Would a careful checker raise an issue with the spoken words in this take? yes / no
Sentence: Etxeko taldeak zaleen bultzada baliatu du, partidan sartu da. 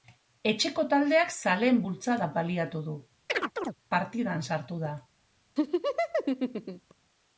no